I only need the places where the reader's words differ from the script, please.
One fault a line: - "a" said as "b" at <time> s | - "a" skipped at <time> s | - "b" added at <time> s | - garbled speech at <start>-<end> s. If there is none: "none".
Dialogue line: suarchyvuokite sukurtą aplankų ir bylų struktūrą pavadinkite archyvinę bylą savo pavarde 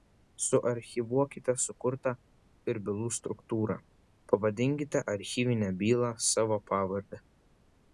- "aplankų" skipped at 2.1 s